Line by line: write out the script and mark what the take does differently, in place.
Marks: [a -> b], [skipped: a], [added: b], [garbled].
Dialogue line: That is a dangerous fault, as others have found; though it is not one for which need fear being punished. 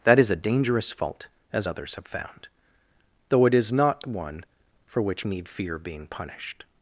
That is a dangerous fault, as others have found; though it is not one for which need fear being punished.